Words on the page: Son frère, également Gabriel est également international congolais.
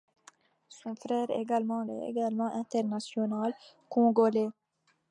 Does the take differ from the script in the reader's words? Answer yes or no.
yes